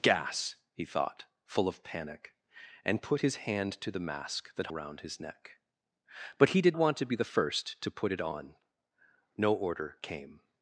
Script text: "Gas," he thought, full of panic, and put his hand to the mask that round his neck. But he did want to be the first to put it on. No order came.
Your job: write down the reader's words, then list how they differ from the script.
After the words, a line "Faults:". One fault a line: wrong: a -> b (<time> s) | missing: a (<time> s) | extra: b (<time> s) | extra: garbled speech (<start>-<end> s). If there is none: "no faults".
"Gas," he thought, full of panic, and put his hand to the mask that round his neck. But he did want to be the first to put it on. No order came.
Faults:
no faults